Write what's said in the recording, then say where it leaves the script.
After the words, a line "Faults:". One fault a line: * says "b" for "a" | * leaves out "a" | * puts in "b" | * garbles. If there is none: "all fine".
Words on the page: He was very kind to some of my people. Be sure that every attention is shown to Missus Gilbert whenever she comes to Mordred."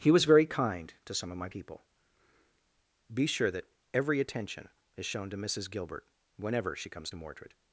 He was very kind to some of my people. Be sure that every attention is shown to Missus Gilbert whenever she comes to Mordred."
Faults:
all fine